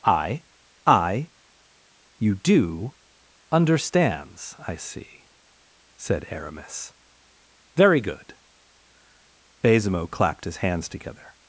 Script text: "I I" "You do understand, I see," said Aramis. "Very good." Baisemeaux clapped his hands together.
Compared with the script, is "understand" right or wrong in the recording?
wrong